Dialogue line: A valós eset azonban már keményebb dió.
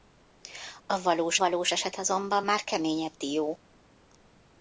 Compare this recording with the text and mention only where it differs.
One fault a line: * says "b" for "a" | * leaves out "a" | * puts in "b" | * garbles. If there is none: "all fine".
* puts in "valós"